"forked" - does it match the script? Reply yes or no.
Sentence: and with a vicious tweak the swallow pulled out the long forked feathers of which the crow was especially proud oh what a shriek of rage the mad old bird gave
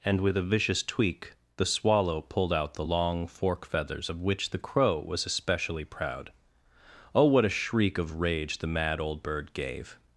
no